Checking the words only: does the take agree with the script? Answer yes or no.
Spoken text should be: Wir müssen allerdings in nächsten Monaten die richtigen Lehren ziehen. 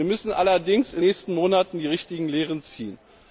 yes